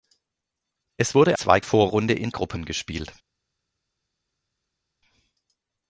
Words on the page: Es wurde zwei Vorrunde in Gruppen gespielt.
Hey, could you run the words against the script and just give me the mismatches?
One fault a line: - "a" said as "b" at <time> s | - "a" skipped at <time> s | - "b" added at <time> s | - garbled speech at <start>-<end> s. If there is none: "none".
none